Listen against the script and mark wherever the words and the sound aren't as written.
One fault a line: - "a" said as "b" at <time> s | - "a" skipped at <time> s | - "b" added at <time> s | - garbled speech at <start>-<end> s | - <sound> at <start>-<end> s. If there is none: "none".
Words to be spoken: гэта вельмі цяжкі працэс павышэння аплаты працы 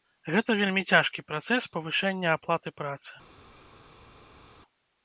none